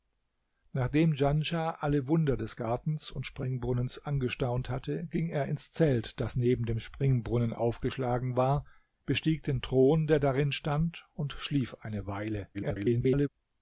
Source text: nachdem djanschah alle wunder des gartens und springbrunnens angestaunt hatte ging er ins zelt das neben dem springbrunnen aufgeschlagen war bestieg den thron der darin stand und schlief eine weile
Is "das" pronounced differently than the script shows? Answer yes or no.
no